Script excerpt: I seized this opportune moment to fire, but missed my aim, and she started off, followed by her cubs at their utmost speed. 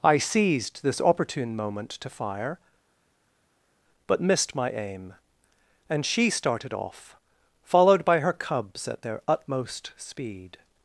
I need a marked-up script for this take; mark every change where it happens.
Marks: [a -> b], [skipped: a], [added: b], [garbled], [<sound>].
I seized this opportune moment to fire, but missed my aim, and she started off, followed by her cubs at their utmost speed.